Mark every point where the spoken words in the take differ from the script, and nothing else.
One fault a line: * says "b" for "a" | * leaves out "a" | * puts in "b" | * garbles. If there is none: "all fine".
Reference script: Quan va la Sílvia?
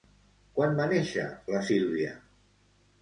* puts in "néixer"